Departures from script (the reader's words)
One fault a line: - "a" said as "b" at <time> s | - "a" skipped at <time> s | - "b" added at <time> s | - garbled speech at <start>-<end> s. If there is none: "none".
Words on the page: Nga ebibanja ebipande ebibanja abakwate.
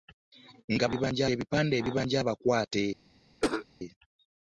none